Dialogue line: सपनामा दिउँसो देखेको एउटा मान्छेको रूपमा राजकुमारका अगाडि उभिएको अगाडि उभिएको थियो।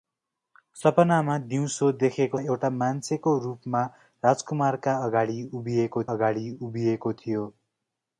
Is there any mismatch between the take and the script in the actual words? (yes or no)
no